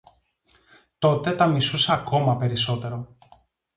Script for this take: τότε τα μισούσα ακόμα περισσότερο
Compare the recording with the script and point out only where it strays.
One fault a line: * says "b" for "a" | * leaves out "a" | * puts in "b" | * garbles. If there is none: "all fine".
all fine